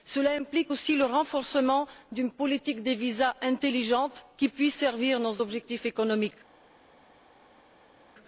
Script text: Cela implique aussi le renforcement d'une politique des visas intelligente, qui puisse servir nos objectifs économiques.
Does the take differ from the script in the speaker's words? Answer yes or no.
no